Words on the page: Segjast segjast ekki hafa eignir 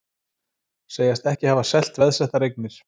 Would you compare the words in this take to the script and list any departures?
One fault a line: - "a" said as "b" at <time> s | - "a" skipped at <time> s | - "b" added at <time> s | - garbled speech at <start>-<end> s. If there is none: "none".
- "segjast" skipped at 1.3 s
- "selt veðsettar" added at 1.7 s